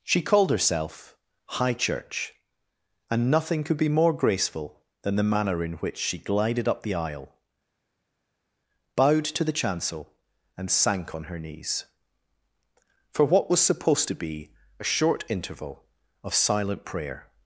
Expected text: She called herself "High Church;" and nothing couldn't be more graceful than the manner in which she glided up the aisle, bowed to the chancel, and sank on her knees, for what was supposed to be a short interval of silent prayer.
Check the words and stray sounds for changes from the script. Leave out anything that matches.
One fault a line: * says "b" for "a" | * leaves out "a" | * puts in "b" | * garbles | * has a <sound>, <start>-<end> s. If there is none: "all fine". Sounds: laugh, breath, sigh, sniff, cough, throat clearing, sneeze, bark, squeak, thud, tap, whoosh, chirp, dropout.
* says "could" for "couldn't"